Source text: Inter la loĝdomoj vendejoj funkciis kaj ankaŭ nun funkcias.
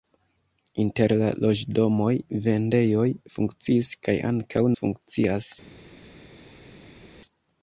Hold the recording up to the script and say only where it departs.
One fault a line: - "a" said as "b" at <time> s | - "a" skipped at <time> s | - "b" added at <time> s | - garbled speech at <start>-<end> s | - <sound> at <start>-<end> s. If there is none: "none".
- "nun" skipped at 4.6 s